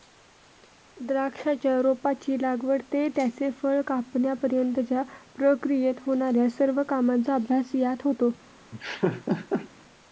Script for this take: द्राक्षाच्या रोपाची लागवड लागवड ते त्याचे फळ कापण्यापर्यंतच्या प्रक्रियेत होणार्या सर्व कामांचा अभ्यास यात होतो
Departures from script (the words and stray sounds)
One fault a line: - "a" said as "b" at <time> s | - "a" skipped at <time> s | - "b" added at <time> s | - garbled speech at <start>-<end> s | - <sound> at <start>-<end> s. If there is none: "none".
- "लागवड" skipped at 2.8 s
- laugh at 8.7-9.7 s